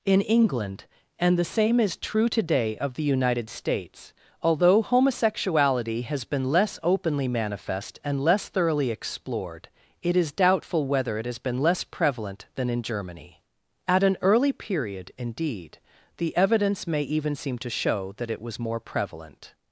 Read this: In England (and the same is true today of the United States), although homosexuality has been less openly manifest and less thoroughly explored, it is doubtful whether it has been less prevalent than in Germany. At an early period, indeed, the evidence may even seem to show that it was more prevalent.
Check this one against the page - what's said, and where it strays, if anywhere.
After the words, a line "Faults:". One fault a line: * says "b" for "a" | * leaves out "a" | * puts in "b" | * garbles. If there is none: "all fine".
In England (and the same is true today of the United States), although homosexuality has been less openly manifest and less thoroughly explored, it is doubtful whether it has been less prevalent than in Germany. At an early period, indeed, the evidence may even seem to show that it was more prevalent.
Faults:
all fine